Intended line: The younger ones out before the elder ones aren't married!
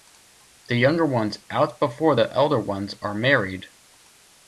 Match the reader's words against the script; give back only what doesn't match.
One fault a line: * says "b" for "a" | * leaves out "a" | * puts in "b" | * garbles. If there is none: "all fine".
* says "are" for "aren't"